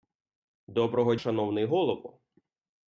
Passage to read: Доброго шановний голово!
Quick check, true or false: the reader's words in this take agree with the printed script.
true